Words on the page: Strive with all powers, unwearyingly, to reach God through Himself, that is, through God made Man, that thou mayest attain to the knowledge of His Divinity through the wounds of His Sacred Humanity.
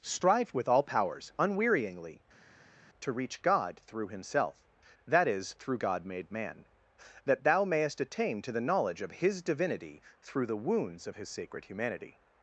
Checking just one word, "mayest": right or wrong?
right